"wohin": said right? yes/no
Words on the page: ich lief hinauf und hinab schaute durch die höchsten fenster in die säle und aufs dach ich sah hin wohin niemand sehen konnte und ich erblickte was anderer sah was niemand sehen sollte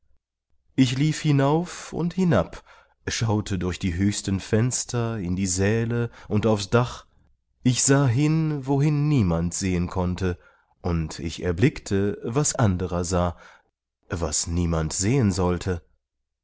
yes